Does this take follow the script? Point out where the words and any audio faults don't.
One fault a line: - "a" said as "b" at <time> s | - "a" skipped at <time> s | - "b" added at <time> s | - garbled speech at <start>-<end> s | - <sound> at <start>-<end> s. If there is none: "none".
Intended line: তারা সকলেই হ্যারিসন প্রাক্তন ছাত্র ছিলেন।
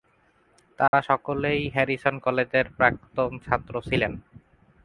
- dropout at 0.9-0.9 s
- "কলেজের" added at 2.2 s